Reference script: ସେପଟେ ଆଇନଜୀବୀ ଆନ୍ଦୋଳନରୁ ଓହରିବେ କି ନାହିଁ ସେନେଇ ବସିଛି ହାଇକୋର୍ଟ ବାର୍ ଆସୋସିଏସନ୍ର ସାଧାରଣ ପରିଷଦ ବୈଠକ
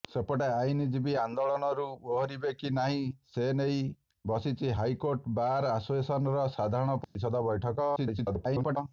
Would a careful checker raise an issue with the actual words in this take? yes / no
yes